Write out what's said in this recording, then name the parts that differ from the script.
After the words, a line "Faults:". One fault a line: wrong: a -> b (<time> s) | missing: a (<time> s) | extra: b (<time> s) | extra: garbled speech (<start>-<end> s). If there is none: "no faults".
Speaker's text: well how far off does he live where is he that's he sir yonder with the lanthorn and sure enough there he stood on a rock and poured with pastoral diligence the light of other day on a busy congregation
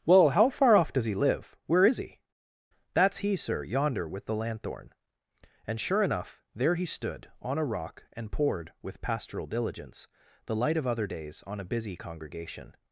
well how far off does he live where is he that's he sir yonder with the lanthorn and sure enough there he stood on a rock and poured with pastoral diligence the light of other days on a busy congregation
Faults:
wrong: day -> days (11.1 s)